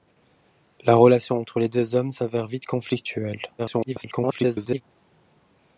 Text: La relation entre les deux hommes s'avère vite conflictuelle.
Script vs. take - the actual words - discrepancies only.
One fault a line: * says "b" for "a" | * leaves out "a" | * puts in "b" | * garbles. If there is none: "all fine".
* garbles